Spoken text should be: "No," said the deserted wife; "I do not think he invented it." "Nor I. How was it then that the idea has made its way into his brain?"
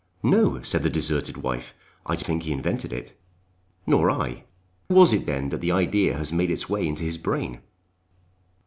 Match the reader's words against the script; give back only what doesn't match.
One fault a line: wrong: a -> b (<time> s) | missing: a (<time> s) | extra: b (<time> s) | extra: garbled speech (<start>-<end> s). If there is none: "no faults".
missing: not (2.2 s)
missing: How (4.4 s)